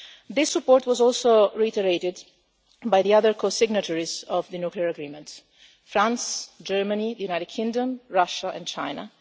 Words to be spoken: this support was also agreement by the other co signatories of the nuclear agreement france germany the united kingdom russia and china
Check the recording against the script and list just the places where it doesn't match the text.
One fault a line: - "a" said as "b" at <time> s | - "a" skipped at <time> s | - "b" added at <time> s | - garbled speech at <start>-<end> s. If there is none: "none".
- "agreement" said as "reiterated" at 1.5 s